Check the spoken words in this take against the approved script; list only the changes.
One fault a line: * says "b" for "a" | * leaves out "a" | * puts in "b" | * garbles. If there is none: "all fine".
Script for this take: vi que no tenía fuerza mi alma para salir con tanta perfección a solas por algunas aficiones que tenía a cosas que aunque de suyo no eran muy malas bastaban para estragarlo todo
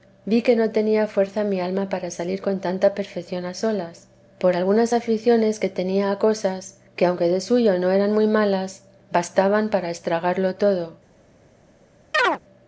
all fine